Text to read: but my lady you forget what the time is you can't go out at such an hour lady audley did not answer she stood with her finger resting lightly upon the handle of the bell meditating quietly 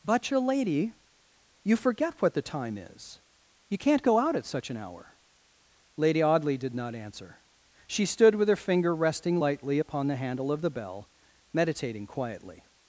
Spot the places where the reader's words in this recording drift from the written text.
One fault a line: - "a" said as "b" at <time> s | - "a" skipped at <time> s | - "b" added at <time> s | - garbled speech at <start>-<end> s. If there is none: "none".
- "my" said as "your" at 0.3 s